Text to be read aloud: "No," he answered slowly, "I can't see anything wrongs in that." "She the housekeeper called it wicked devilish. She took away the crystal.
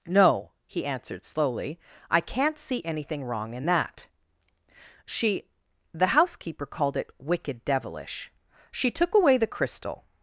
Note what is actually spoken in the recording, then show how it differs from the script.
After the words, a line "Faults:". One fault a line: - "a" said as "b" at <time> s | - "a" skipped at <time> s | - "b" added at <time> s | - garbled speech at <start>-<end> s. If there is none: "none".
"No," he answered slowly, "I can't see anything wrong in that." "She the housekeeper called it wicked devilish. She took away the crystal.
Faults:
- "wrongs" said as "wrong" at 3.2 s